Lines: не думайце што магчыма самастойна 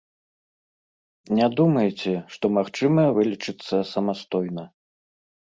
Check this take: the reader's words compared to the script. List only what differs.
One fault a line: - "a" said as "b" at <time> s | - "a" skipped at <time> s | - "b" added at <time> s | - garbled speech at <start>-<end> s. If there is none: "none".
- "вылечыцца" added at 3.2 s